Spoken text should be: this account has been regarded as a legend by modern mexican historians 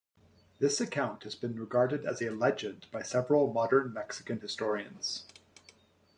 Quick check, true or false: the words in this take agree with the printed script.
false